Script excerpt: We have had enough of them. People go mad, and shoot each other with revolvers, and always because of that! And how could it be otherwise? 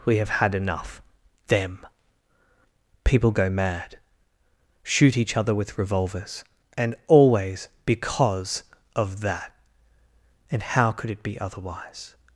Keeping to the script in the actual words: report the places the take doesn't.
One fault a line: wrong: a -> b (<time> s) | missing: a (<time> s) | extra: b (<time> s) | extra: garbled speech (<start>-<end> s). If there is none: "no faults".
missing: of (1.0 s)
missing: and (4.0 s)